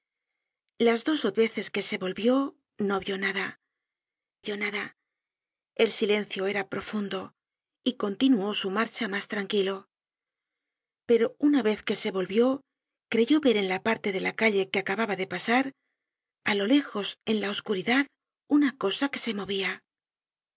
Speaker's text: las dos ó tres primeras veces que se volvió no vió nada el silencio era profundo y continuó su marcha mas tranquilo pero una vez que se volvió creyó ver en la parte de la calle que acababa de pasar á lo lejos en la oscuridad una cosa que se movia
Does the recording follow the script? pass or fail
fail